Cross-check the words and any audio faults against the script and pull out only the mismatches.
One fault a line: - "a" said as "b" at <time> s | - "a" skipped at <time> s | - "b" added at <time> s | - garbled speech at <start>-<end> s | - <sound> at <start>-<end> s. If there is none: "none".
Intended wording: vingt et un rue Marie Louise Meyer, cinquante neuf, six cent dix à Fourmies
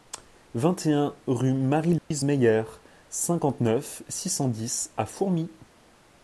- dropout at 2.0-2.1 s